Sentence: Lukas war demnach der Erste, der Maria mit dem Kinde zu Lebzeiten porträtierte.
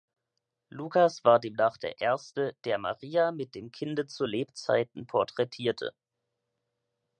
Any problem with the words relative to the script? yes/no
no